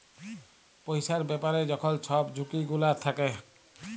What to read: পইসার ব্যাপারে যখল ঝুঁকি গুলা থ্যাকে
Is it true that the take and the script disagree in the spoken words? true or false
true